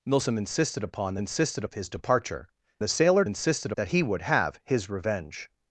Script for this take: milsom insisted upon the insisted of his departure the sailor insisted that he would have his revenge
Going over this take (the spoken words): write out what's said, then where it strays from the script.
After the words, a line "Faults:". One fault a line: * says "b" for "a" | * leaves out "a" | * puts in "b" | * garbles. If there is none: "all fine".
milsom insisted upon the insisted of his departure the sailor insisted that he would have his revenge
Faults:
all fine